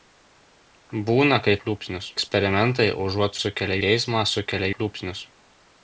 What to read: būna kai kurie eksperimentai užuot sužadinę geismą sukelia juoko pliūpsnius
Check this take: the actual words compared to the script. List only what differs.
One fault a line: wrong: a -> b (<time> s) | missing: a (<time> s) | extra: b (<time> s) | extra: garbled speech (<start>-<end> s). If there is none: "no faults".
wrong: kurie -> pliūpsnius (1.6 s)
wrong: sužadinę -> sukelia (3.4 s)
missing: juoko (4.7 s)